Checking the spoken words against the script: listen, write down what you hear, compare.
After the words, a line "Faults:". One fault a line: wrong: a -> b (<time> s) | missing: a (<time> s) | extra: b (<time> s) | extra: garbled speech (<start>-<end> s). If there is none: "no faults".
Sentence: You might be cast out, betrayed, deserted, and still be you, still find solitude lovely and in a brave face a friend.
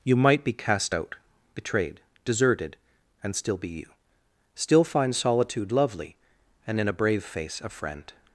You might be cast out, betrayed, deserted, and still be you, still find solitude lovely and in a brave face a friend.
Faults:
no faults